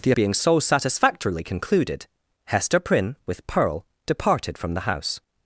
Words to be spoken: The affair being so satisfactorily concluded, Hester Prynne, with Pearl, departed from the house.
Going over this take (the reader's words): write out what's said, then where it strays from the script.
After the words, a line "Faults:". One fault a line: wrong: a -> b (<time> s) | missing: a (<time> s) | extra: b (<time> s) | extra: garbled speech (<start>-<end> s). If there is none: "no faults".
The being so satisfactorily concluded, Hester Prynne, with Pearl, departed from the house.
Faults:
missing: affair (0.1 s)